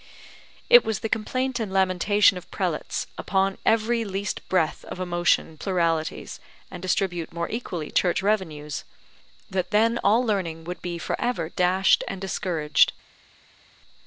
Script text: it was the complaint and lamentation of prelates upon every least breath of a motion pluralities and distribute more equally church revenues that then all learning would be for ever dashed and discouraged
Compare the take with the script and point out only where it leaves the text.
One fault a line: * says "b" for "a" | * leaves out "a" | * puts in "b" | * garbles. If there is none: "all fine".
all fine